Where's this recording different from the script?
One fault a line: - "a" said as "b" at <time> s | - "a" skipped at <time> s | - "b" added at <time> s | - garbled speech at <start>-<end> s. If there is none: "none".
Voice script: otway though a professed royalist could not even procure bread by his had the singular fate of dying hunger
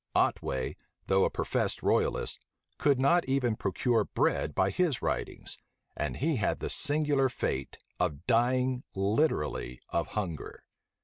- "writings and he" added at 5.0 s
- "literally of" added at 8.9 s